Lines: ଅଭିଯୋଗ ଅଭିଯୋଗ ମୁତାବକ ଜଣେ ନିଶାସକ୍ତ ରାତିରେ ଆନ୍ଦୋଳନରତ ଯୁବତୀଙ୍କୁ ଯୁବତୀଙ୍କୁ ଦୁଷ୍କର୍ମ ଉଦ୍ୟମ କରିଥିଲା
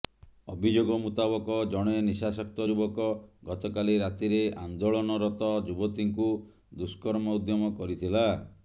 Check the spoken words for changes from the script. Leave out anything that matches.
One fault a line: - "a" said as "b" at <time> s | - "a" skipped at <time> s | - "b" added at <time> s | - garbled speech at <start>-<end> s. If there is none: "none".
- "ଅଭିଯୋଗ" skipped at 0.9 s
- "ଯୁବକ ଗତକାଲି" added at 2.7 s
- "ଯୁବତୀଙ୍କୁ" skipped at 6.3 s